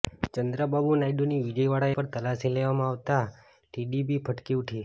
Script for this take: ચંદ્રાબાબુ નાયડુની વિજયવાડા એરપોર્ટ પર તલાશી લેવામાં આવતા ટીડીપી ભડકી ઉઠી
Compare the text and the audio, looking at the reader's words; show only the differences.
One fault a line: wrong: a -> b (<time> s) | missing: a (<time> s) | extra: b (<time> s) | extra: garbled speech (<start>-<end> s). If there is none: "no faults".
missing: એરપોર્ટ (1.9 s)